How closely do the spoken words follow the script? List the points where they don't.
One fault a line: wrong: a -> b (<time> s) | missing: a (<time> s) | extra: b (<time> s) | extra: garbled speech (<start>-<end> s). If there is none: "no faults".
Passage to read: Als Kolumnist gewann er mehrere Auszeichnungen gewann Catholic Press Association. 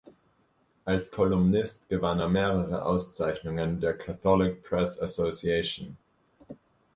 wrong: gewann -> der (3.8 s)